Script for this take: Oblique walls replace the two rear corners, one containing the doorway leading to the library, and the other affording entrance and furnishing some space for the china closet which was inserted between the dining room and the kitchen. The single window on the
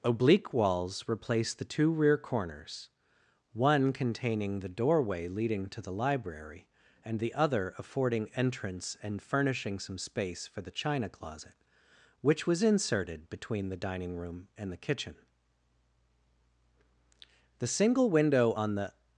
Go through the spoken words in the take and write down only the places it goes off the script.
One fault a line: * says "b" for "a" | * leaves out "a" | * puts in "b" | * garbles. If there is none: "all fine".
all fine